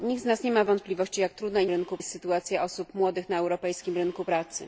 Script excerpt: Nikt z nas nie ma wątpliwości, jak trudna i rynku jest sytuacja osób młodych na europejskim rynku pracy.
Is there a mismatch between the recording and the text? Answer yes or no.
no